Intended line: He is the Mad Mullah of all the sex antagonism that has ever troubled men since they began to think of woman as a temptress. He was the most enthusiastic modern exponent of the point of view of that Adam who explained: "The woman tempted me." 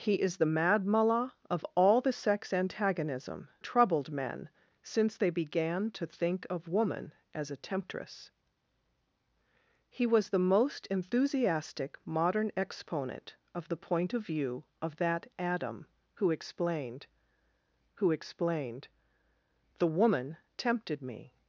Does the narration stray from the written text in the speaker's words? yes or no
yes